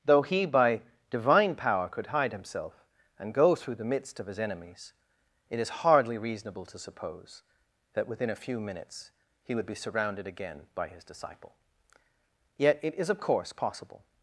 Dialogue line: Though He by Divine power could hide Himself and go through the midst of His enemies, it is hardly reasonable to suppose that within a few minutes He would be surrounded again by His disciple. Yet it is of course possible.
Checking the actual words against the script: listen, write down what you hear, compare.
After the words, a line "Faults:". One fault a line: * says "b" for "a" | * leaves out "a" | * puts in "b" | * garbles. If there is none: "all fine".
Though He by Divine power could hide Himself and go through the midst of His enemies, it is hardly reasonable to suppose that within a few minutes He would be surrounded again by His disciple. Yet it is of course possible.
Faults:
all fine